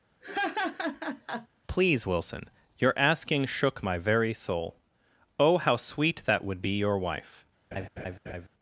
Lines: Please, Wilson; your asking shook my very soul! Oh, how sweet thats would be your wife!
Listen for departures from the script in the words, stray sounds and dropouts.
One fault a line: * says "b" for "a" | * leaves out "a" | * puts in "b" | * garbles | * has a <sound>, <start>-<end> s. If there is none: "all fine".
* has a laugh, 0.2-1.5 s
* says "that" for "thats"
* has a laugh, 7.7-8.5 s